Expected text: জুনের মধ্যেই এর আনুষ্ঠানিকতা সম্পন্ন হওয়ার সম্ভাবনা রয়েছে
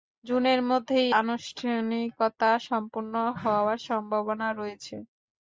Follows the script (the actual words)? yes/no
no